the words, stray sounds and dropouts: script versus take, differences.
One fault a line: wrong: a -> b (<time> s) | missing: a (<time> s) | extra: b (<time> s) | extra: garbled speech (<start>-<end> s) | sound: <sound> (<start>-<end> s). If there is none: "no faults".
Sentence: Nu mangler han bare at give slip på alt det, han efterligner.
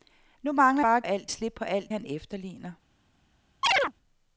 missing: han (0.8 s)
wrong: give -> alt (1.0 s)
missing: det (1.9 s)
sound: chirp (3.6-3.9 s)